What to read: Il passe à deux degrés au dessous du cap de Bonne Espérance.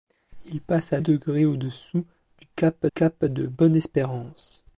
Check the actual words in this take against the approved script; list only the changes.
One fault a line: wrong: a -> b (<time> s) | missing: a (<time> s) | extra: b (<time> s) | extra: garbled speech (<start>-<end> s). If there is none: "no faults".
missing: deux (1.0 s)
extra: cap (2.9 s)